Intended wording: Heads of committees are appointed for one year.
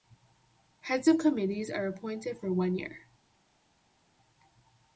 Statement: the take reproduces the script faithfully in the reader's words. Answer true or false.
true